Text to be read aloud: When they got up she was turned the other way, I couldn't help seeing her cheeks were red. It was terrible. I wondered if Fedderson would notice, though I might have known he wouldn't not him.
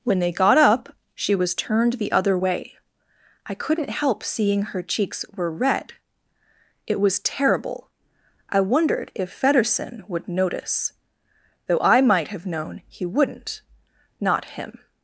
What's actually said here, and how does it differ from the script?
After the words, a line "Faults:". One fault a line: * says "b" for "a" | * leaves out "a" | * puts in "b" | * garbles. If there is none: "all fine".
When they got up she was turned the other way, I couldn't help seeing her cheeks were red. It was terrible. I wondered if Fedderson would notice, though I might have known he wouldn't not him.
Faults:
all fine